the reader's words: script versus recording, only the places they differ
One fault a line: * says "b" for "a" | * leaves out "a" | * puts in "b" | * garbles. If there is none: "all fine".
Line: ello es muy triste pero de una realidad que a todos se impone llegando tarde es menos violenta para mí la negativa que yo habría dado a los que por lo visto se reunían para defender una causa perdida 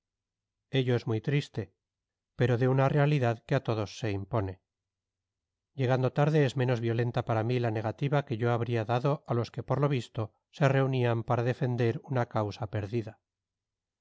all fine